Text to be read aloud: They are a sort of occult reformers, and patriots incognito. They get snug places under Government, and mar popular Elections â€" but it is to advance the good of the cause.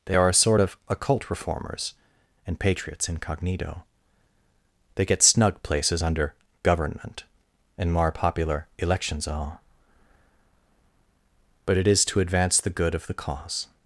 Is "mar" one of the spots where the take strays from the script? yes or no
yes